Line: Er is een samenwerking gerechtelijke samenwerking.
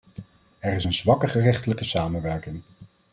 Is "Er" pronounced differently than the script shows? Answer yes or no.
no